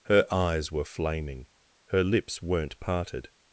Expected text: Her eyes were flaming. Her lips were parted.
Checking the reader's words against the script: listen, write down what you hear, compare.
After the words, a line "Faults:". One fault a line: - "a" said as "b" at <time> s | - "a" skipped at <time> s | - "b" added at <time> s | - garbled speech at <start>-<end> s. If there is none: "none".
Her eyes were flaming. Her lips weren't parted.
Faults:
- "were" said as "weren't" at 2.4 s